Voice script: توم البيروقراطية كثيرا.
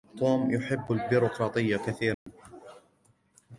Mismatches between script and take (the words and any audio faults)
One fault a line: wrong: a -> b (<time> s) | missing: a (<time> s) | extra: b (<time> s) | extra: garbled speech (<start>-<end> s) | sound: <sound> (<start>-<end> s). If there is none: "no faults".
extra: يحب (0.5 s)
sound: dropout (2.1-2.3 s)